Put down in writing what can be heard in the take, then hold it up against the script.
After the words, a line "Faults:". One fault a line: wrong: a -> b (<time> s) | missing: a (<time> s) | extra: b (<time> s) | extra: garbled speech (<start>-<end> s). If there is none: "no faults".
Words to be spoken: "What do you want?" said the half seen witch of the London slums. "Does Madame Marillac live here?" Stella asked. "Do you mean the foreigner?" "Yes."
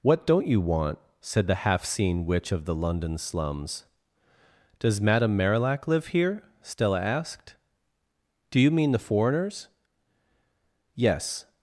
"What don't you want?" said the half seen witch of the London slums. "Does Madame Marillac live here?" Stella asked. "Do you mean the foreigners?" "Yes."
Faults:
wrong: do -> don't (0.2 s)
wrong: foreigner -> foreigners (9.0 s)